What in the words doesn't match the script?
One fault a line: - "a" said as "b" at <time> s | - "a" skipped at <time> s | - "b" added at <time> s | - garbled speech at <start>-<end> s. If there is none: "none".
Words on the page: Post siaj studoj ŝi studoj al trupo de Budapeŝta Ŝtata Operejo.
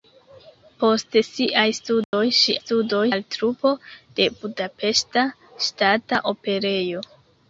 none